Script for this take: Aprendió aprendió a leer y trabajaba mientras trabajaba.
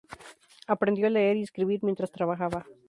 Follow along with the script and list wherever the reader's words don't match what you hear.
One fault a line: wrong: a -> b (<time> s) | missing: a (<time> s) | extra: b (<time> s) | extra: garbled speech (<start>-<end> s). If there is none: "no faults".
missing: aprendió (1.1 s)
wrong: trabajaba -> escribir (1.4 s)